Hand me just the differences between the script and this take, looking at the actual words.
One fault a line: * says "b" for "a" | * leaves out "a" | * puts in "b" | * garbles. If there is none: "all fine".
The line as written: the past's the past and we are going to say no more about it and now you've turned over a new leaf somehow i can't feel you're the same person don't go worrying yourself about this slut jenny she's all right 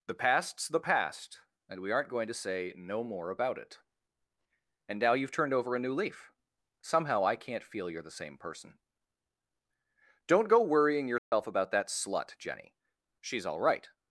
* says "aren't" for "are"
* says "that" for "this"